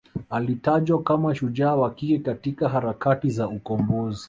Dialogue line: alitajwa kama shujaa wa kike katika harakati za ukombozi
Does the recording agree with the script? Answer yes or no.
yes